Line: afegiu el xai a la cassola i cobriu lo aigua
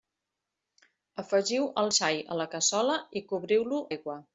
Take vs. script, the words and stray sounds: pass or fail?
pass